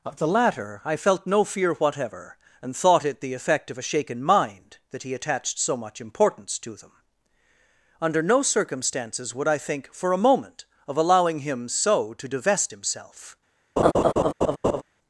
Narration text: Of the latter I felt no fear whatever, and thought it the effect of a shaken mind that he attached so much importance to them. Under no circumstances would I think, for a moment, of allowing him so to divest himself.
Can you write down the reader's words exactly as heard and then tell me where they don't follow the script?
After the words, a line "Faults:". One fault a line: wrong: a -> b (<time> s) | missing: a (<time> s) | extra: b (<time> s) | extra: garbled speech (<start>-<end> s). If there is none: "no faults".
Of the latter I felt no fear whatever, and thought it the effect of a shaken mind that he attached so much importance to them. Under no circumstances would I think, for a moment, of allowing him so to divest himself.
Faults:
no faults